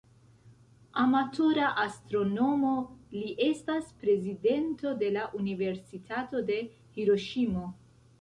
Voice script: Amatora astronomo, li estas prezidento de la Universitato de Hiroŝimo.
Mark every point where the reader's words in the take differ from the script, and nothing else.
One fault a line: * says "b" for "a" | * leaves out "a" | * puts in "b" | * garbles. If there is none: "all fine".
all fine